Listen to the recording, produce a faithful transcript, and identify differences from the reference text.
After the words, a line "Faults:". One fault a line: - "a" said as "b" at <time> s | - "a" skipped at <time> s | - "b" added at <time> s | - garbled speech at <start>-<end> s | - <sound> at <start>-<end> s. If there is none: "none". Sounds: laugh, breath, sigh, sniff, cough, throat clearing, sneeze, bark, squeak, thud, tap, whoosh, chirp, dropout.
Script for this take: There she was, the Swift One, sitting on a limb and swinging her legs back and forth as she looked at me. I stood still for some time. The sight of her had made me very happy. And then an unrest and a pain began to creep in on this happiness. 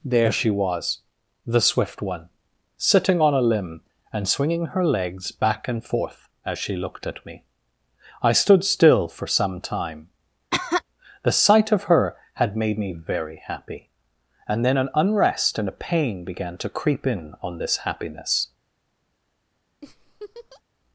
There she was, the Swift One, sitting on a limb and swinging her legs back and forth as she looked at me. I stood still for some time. The sight of her had made me very happy. And then an unrest and a pain began to creep in on this happiness.
Faults:
- cough at 10.5-10.8 s
- laugh at 19.8-20.6 s